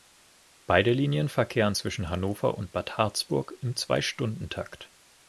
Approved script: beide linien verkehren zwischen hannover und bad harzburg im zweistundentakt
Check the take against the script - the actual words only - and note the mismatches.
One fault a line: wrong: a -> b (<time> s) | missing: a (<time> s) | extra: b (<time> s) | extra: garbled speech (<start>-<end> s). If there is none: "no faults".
no faults